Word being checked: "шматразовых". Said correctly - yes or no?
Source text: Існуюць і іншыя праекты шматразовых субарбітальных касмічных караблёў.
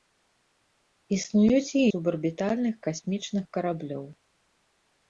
no